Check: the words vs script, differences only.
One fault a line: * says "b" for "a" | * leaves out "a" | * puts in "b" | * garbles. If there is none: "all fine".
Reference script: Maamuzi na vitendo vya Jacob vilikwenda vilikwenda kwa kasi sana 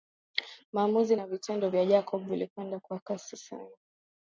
* leaves out "vilikwenda"